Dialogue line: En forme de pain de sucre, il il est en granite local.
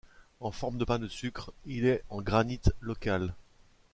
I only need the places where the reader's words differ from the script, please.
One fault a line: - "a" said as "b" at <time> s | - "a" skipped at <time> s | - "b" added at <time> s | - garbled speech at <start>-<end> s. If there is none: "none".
- "il" skipped at 1.8 s